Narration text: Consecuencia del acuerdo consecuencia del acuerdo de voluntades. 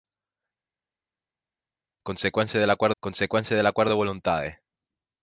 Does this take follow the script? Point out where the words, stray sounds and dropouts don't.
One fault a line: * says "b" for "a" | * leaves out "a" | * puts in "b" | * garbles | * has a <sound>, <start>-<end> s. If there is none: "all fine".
all fine